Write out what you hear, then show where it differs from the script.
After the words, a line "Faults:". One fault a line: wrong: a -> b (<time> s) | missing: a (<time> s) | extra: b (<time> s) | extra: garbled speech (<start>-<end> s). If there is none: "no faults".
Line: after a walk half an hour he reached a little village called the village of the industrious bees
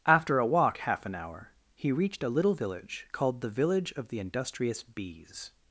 after a walk half an hour he reached a little village called the village of the industrious bees
Faults:
no faults